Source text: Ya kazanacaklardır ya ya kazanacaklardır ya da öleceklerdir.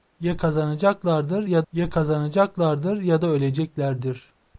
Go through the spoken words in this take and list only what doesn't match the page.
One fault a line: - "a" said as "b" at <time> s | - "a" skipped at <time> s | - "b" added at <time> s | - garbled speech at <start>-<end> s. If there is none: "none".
none